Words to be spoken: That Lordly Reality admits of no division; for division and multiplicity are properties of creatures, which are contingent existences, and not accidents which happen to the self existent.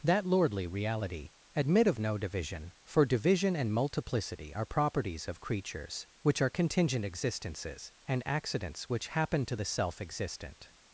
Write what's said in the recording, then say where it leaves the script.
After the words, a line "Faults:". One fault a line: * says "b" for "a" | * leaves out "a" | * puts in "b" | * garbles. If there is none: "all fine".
That Lordly Reality admit of no division; for division and multiplicity are properties of creatures, which are contingent existences, and accidents which happen to the self existent.
Faults:
* says "admit" for "admits"
* leaves out "not"